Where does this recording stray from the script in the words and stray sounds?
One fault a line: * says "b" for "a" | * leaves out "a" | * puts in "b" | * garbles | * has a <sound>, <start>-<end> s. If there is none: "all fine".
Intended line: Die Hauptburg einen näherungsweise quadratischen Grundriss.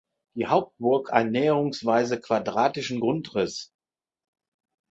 all fine